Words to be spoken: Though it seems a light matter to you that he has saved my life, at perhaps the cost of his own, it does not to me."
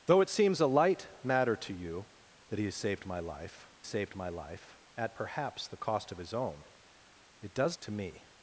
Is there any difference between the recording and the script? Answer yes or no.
yes